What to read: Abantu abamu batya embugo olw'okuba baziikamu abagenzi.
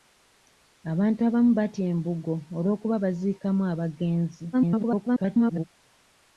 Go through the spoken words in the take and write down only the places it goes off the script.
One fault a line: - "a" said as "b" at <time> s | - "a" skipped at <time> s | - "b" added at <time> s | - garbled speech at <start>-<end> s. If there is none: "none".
- garbled speech at 4.5-5.6 s